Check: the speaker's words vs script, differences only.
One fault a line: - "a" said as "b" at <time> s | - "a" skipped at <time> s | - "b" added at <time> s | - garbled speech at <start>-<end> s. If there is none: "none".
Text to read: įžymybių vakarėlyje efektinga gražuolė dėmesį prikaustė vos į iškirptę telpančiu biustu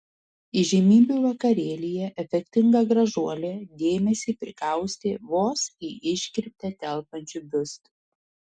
none